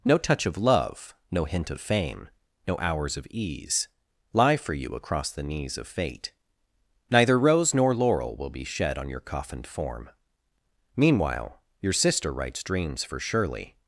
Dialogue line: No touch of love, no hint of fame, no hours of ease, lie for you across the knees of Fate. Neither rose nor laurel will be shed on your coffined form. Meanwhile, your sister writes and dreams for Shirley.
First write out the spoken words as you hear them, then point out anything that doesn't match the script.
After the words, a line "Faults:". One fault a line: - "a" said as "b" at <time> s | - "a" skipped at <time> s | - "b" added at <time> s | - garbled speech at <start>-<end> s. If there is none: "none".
No touch of love, no hint of fame, no hours of ease, lie for you across the knees of Fate. Neither rose nor laurel will be shed on your coffined form. Meanwhile, your sister writes dreams for Shirley.
Faults:
- "and" skipped at 12.6 s